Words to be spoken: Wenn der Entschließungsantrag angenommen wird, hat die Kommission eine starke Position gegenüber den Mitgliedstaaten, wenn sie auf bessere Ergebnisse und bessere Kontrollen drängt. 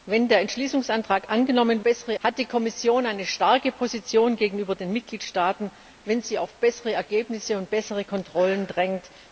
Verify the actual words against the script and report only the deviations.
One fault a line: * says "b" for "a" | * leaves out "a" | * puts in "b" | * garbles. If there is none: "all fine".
* says "bessere" for "wird"